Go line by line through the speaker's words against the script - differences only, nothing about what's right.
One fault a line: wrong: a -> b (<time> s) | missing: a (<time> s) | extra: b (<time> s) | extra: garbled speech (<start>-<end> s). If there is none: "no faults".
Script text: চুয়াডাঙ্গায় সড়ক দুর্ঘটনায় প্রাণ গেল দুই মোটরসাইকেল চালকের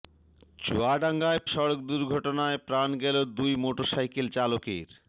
no faults